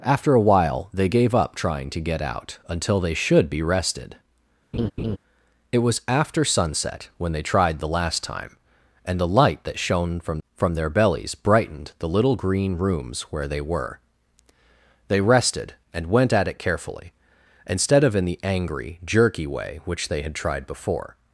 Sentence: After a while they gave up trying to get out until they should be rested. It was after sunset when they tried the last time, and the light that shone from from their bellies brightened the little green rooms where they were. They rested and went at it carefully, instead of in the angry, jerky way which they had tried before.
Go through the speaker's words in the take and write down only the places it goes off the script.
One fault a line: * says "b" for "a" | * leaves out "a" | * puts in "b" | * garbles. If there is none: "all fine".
all fine